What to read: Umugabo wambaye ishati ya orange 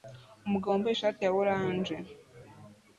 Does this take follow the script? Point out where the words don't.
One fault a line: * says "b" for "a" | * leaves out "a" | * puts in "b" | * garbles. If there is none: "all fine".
all fine